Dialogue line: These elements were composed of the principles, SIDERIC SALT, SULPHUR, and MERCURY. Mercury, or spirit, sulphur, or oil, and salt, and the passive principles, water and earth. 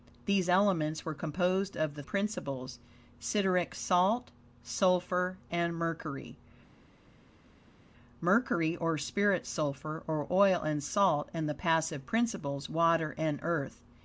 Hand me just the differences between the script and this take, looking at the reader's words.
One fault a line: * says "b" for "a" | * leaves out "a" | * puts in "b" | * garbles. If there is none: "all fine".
all fine